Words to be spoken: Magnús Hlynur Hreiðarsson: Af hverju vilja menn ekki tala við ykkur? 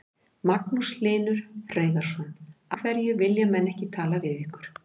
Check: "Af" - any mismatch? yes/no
yes